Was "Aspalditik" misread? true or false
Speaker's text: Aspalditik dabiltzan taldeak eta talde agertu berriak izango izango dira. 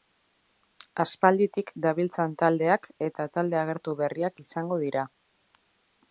false